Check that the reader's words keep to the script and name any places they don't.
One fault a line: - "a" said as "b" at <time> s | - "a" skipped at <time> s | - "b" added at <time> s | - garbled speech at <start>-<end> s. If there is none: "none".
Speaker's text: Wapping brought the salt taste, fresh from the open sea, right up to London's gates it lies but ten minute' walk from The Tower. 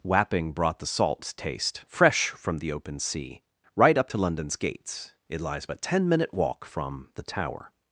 none